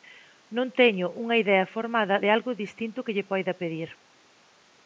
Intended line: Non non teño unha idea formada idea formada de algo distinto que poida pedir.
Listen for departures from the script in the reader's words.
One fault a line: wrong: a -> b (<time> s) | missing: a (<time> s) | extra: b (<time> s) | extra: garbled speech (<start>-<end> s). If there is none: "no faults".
missing: non (0.7 s)
missing: idea formada (2.1 s)
extra: lle (3.2 s)